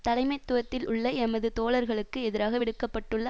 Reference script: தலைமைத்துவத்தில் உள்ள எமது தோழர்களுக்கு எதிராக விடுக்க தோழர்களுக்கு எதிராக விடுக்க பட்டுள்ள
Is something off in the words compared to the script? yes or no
yes